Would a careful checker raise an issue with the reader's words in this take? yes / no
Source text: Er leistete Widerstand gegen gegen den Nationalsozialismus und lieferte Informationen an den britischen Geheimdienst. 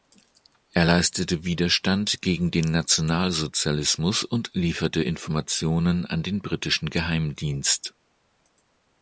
yes